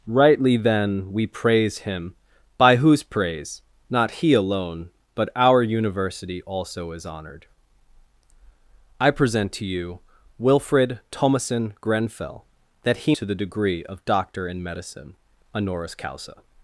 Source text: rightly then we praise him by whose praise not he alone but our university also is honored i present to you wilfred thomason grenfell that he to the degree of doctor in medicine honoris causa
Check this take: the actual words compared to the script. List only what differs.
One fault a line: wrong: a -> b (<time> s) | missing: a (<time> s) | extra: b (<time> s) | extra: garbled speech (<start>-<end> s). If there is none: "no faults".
no faults